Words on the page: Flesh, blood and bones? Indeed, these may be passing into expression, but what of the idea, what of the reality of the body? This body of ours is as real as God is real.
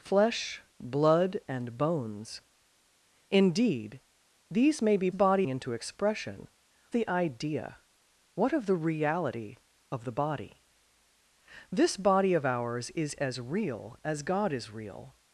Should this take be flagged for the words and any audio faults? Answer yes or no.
yes